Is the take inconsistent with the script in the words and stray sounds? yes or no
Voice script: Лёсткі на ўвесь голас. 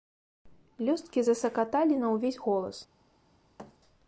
yes